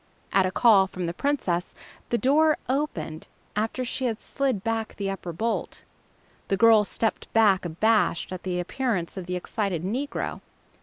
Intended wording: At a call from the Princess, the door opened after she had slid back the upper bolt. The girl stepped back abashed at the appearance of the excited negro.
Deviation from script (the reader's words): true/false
false